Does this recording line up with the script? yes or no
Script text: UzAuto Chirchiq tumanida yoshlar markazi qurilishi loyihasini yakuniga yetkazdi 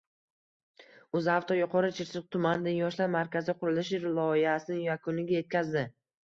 no